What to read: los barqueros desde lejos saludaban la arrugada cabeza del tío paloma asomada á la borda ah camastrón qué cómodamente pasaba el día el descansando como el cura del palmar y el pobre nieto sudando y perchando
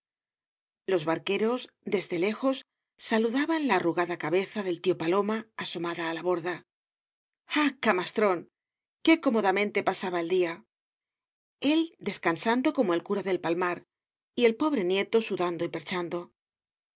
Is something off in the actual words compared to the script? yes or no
no